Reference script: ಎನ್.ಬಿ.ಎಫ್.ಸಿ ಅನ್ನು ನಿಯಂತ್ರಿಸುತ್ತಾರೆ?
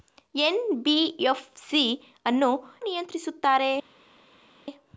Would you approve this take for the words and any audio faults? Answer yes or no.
yes